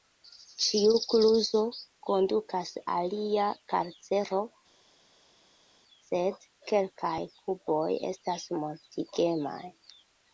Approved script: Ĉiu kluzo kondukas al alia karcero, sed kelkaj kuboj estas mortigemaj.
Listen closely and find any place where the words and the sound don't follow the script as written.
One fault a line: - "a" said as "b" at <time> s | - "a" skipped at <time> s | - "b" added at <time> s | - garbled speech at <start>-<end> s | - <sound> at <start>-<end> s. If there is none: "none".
- "al" skipped at 2.7 s